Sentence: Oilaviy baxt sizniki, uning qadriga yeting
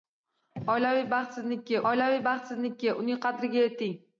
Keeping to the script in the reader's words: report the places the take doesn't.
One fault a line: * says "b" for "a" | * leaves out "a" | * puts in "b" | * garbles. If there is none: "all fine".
* puts in "oilaviy baxt sizniki"